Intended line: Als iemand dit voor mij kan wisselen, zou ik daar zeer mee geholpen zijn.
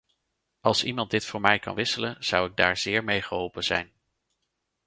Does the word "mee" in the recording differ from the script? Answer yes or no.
no